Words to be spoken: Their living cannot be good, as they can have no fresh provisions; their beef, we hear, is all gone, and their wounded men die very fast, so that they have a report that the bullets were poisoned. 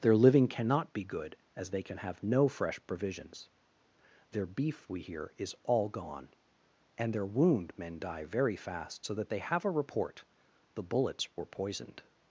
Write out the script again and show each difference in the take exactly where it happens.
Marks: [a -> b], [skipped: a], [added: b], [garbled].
Their living cannot be good, as they can have no fresh provisions; their beef, we hear, is all gone, and their [wounded -> wound] men die very fast, so that they have a report [skipped: that] the bullets were poisoned.